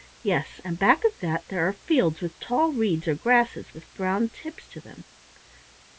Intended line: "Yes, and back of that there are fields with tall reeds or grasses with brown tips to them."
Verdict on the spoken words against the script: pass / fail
pass